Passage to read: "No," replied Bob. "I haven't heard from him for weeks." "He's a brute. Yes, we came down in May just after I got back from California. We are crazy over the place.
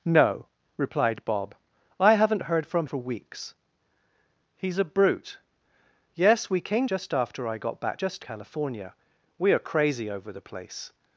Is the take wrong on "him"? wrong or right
wrong